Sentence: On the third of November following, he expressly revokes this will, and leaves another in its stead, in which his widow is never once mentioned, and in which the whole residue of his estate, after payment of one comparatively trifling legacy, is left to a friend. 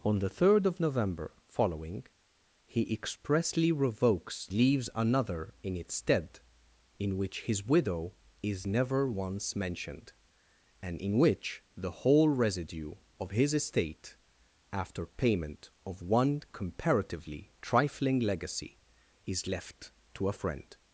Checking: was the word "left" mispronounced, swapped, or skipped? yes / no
no